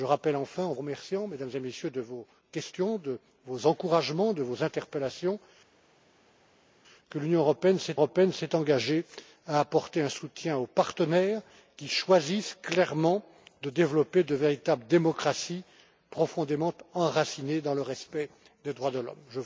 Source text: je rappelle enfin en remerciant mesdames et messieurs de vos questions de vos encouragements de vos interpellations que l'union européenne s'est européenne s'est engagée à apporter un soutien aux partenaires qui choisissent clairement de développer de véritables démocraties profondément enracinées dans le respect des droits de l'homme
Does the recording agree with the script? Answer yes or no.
yes